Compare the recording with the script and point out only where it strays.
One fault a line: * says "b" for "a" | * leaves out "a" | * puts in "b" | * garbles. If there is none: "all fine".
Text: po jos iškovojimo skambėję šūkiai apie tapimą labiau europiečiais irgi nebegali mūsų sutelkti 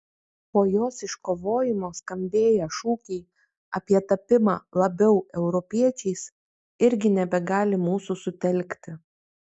all fine